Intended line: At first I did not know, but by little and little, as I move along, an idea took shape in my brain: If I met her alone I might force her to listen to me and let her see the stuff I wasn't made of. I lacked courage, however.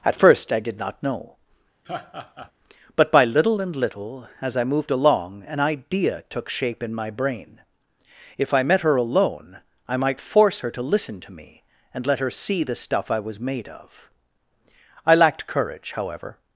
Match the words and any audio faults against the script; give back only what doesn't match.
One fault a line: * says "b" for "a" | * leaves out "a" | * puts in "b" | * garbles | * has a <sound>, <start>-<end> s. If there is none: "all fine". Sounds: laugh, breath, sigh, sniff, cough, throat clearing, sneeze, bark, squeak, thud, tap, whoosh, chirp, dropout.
* has a laugh, 1.8-2.5 s
* says "moved" for "move"
* says "was" for "wasn't"